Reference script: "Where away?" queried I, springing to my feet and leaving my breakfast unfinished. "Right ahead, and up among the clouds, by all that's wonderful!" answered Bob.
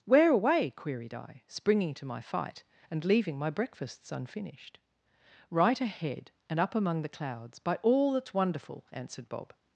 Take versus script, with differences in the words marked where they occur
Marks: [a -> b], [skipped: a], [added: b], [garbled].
"Where away?" queried I, springing to my [feet -> fight] and leaving my [breakfast -> breakfasts] unfinished. "Right ahead, and up among the clouds, by all that's wonderful!" answered Bob.